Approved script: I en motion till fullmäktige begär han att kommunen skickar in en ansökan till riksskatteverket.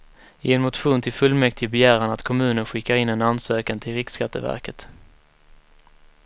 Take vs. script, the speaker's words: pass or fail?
pass